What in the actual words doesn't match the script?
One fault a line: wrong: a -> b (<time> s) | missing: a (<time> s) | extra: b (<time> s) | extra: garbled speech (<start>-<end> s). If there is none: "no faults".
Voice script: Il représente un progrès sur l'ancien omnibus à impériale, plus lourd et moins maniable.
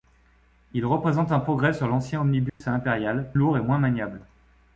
missing: plus (3.3 s)